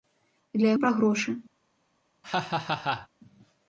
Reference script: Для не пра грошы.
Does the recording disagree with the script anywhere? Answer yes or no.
no